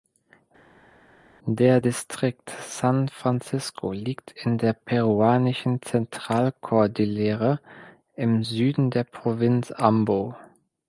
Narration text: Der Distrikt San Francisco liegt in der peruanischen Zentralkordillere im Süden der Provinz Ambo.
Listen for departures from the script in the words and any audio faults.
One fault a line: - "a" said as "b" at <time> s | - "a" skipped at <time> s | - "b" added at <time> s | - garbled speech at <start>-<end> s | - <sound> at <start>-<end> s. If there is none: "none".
none